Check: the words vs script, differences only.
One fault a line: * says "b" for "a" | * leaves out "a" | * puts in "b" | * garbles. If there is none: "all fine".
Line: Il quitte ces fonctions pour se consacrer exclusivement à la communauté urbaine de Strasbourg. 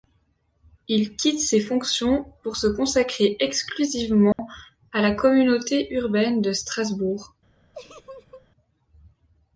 all fine